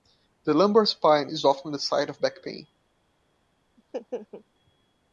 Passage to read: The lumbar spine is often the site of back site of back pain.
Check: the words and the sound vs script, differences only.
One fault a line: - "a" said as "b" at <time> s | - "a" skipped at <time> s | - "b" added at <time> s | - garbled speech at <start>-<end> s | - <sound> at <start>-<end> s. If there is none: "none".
- "site of back" skipped at 2.4 s
- laugh at 3.8-4.4 s